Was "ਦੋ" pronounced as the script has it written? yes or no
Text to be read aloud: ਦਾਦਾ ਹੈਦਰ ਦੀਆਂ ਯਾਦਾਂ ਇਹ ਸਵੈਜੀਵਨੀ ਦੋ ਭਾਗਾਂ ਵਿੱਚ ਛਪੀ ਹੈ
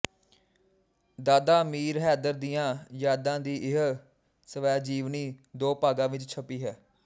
yes